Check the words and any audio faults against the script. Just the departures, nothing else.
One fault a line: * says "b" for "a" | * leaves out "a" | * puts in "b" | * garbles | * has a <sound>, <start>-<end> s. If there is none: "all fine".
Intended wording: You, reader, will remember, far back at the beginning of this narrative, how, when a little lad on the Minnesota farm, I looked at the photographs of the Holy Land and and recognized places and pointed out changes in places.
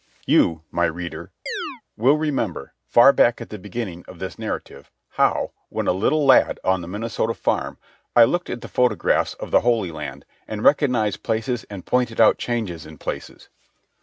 * puts in "my"
* has a chirp, 1.5-1.8 s
* leaves out "and"